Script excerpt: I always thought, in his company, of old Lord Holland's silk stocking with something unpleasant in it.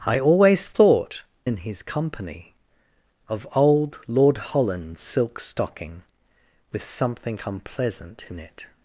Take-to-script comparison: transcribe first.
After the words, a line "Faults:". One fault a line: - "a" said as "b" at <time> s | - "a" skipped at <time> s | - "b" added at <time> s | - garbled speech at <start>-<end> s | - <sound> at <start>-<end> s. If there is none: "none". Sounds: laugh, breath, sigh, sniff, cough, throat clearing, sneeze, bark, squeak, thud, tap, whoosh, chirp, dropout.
I always thought, in his company, of old Lord Holland's silk stocking with something unpleasant in it.
Faults:
none